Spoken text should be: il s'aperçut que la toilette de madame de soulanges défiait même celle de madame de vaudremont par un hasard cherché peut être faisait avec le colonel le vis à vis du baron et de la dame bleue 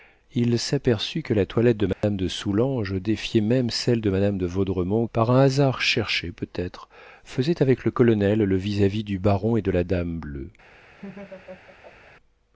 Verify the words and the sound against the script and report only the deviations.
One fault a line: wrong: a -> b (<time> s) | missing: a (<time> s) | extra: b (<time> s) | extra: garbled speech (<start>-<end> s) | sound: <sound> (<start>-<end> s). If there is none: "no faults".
sound: dropout (1.9-2.0 s)
sound: laugh (11.0-12.1 s)